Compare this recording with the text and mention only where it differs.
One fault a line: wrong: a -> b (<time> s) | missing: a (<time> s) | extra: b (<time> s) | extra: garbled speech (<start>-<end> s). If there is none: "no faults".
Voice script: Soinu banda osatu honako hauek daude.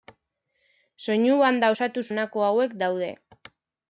no faults